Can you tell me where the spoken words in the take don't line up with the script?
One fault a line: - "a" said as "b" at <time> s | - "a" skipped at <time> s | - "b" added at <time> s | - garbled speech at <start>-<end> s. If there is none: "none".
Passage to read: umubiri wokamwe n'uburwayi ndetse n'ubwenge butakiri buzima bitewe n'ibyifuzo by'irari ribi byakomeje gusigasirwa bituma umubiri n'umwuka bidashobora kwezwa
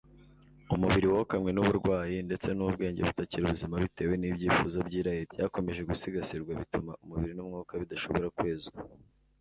- "ribi" skipped at 5.2 s